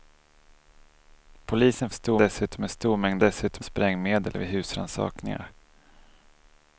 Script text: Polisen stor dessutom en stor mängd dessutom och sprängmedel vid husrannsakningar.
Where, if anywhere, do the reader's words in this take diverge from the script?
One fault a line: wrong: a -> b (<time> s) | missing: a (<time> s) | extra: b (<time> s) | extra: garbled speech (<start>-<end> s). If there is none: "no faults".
no faults